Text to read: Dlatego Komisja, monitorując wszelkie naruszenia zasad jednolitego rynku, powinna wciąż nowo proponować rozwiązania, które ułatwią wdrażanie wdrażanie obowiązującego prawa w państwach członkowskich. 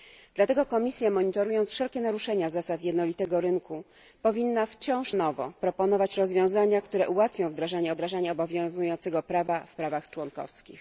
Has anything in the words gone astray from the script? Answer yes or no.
no